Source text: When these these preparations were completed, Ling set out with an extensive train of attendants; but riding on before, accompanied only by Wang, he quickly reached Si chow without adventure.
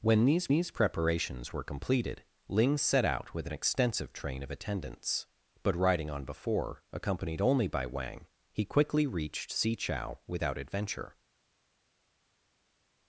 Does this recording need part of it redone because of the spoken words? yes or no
no